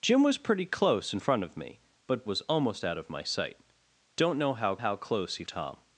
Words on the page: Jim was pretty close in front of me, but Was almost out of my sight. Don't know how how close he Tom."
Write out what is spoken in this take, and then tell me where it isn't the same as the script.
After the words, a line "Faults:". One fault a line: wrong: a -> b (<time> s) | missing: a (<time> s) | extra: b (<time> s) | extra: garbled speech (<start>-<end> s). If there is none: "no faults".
Jim was pretty close in front of me, but Was almost out of my sight. Don't know how how close he Tom."
Faults:
no faults